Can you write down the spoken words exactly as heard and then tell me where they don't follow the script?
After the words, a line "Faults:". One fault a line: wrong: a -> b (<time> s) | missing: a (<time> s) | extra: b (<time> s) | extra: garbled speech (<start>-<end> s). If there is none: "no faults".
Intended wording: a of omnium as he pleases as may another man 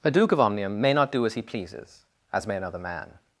a duke of omnium may not do as he pleases as may another man
Faults:
extra: duke (0.1 s)
extra: may not do (0.8 s)